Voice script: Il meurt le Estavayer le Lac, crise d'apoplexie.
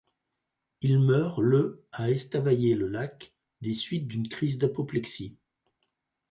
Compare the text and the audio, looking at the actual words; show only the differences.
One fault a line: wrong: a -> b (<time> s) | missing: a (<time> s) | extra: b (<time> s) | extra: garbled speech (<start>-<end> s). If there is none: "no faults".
extra: à (1.9 s)
extra: des suites d'une (3.6 s)